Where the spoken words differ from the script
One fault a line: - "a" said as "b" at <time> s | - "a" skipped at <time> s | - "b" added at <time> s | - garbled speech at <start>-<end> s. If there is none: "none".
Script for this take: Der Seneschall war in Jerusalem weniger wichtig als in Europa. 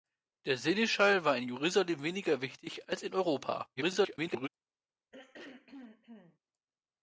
- garbled speech at 3.8-4.5 s